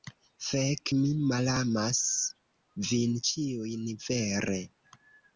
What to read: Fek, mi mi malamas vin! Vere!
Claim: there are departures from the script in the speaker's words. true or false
true